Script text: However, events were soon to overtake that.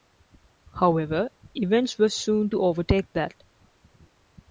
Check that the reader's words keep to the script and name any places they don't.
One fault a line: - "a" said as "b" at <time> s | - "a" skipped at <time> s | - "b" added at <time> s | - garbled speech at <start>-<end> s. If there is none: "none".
none